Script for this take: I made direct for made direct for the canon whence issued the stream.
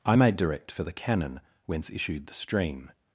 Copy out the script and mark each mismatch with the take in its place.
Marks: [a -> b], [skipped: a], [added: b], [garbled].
I made direct for [skipped: made direct for] the canon whence issued the stream.